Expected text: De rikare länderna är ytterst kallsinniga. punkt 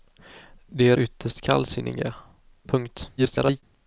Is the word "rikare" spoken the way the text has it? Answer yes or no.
no